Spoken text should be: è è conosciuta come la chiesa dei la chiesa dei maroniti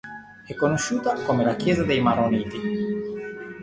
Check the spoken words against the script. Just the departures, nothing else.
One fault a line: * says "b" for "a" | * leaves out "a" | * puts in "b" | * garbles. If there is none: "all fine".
* leaves out "è"
* leaves out "la chiesa dei"